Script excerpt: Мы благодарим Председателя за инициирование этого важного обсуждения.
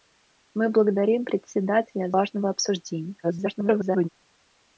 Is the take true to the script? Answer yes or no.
no